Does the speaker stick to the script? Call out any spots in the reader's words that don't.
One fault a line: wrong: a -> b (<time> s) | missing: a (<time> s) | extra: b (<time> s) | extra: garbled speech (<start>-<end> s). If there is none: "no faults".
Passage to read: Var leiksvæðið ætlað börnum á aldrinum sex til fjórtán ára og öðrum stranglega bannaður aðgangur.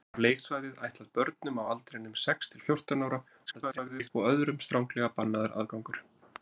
extra: garbled speech (3.5-4.1 s)